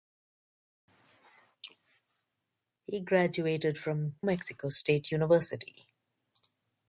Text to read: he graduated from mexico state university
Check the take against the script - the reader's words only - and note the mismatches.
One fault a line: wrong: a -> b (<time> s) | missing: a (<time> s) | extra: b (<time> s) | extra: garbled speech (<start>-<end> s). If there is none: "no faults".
no faults